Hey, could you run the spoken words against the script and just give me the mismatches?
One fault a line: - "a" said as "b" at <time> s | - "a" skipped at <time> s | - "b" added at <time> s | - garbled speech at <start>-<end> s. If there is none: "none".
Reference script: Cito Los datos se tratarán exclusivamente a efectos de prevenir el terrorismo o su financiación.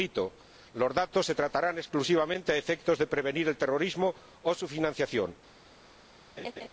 none